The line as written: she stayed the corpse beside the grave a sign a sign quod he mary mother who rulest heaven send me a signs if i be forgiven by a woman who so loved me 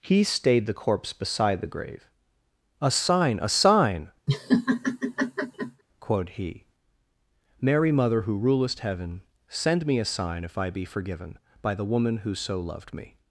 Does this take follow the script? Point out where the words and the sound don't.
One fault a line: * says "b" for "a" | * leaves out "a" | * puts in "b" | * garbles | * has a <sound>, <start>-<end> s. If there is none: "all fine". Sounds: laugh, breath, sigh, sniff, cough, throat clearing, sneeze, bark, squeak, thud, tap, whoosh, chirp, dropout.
* says "he" for "she"
* has a laugh, 4.3-5.8 s
* says "sign" for "signs"
* says "the" for "a"